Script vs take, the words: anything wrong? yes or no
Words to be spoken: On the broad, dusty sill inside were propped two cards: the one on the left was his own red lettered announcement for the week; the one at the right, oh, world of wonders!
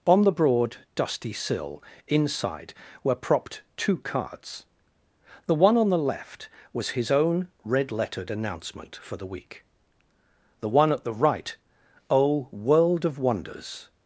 no